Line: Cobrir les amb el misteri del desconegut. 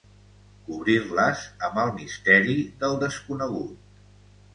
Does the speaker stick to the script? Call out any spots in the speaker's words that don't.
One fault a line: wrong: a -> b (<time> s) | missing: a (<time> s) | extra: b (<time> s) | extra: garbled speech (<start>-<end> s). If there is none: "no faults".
no faults